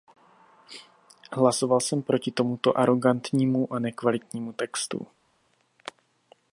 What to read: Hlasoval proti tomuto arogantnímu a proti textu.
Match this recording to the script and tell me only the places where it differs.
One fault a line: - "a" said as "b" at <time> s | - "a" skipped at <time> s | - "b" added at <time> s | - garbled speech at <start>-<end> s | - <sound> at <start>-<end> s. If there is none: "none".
- "jsem" added at 1.8 s
- "proti" said as "nekvalitnímu" at 3.8 s